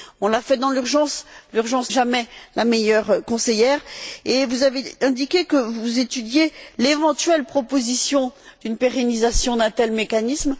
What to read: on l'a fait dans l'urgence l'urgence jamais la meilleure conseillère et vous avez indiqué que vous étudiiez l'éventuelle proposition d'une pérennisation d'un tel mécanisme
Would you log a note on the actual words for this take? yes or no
no